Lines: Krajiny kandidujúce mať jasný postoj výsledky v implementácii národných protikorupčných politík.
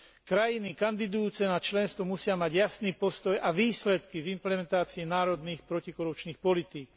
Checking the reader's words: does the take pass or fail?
fail